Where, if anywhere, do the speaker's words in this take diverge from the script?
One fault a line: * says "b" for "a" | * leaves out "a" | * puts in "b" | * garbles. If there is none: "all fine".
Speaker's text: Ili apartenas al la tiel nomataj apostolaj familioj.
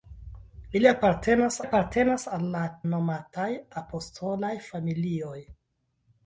* puts in "apartenas"
* leaves out "tiel"